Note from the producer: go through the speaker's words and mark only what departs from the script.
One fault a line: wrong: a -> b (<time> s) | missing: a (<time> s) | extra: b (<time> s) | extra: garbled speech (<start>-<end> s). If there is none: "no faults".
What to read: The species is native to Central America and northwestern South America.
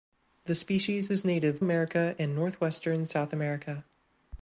missing: to Central (1.6 s)